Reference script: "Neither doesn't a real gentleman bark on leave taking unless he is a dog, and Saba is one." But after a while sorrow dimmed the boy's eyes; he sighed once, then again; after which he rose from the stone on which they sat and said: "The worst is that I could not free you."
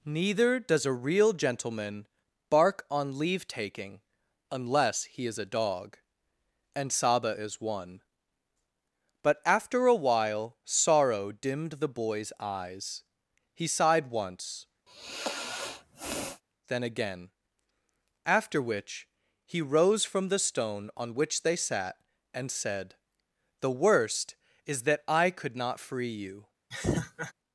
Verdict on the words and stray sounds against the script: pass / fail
fail